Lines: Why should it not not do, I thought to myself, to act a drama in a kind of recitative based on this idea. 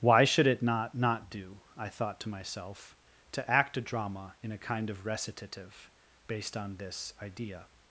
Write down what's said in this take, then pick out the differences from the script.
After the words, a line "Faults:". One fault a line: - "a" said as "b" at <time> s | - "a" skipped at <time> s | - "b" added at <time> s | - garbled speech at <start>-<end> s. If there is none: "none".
Why should it not not do, I thought to myself, to act a drama in a kind of recitative based on this idea.
Faults:
none